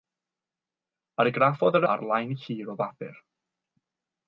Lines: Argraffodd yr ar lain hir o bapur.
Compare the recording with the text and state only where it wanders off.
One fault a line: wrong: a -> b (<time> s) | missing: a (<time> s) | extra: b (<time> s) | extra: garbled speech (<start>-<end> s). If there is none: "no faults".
no faults